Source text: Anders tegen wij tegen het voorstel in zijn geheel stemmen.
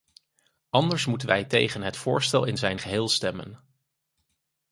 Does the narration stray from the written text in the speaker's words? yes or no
yes